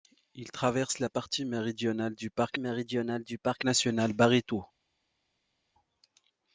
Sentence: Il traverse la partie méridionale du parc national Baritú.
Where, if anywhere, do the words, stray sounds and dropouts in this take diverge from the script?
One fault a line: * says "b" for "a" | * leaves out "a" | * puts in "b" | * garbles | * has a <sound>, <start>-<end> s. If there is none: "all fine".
* puts in "méridionale du parc"